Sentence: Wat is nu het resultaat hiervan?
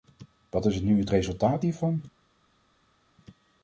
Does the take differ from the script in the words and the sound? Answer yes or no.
no